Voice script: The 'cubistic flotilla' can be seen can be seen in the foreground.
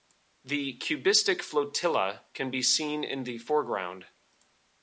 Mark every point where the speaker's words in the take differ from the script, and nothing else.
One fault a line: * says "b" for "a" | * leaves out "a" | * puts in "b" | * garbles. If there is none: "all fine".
* leaves out "can be seen"